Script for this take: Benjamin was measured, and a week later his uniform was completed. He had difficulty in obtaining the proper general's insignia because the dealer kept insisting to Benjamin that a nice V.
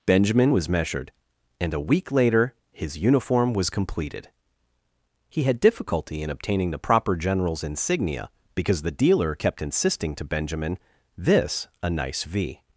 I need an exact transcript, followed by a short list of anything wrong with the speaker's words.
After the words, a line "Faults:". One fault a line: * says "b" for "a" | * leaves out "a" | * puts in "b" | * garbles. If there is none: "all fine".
Benjamin was measured, and a week later his uniform was completed. He had difficulty in obtaining the proper general's insignia because the dealer kept insisting to Benjamin this a nice V.
Faults:
* says "this" for "that"